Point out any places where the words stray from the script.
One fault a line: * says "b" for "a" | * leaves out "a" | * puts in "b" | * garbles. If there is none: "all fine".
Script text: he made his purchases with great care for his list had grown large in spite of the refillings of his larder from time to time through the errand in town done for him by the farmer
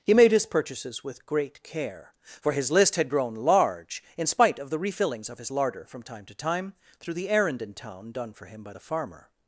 all fine